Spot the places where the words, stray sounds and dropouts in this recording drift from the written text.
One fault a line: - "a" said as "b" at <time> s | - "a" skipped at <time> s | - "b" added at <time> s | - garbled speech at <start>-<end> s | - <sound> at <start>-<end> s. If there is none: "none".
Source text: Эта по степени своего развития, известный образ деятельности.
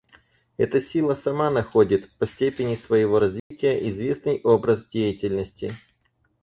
- "сила сама находит" added at 0.8 s
- dropout at 3.4-3.5 s